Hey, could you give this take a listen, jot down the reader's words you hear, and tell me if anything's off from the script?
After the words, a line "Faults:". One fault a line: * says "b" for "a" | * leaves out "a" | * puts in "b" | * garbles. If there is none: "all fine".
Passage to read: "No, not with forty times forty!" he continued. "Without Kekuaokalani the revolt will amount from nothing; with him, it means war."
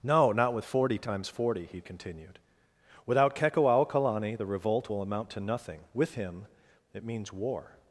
"No, not with forty times forty!" he continued. "Without Kekuaokalani the revolt will amount to nothing; with him, it means war."
Faults:
* says "to" for "from"